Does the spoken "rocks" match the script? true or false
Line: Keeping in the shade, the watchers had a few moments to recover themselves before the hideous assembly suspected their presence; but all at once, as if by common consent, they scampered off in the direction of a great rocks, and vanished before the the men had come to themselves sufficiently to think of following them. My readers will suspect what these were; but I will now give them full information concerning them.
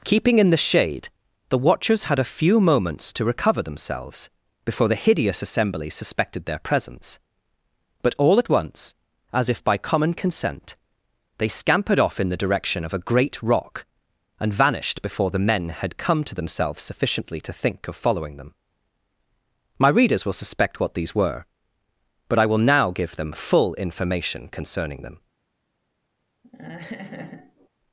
false